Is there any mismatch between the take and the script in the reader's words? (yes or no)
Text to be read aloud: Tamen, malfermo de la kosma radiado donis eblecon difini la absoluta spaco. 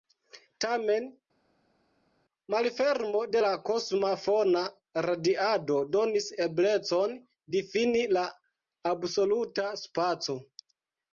yes